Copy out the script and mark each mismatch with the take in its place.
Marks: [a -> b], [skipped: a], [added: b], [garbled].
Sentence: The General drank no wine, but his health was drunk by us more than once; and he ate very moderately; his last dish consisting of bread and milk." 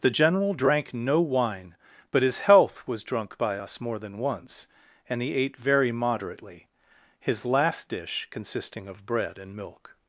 The General drank no wine, but his health was drunk by us more than once; and he ate very moderately; his last dish consisting of bread and milk."